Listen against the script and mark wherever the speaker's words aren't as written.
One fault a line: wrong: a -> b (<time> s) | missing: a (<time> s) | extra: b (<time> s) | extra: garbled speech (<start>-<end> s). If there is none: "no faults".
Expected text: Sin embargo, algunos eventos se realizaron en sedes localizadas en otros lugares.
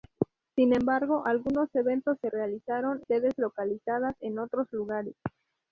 missing: en (3.0 s)